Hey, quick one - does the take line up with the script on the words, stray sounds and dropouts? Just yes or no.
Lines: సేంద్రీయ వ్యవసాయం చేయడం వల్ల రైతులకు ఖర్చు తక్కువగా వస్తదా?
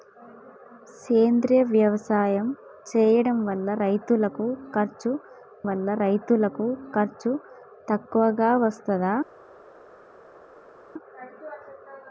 no